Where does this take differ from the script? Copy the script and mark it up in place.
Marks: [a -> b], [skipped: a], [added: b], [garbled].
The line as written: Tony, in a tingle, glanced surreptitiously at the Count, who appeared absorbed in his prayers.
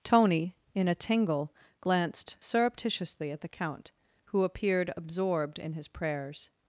Tony, in a tingle, glanced surreptitiously at the Count, who appeared absorbed in his prayers.